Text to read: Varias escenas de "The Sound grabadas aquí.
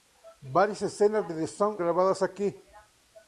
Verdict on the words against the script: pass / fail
pass